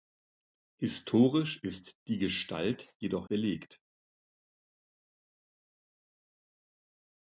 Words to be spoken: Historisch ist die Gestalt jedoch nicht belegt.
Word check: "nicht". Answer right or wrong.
wrong